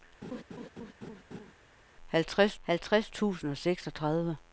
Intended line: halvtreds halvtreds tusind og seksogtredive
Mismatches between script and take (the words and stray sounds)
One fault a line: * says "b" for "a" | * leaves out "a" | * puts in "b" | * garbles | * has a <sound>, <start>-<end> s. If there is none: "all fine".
* has a laugh, 0.2-1.5 s